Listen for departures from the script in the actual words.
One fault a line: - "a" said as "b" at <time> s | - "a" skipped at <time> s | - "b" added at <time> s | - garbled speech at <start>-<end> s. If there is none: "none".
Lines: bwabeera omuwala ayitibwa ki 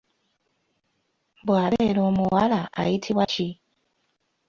none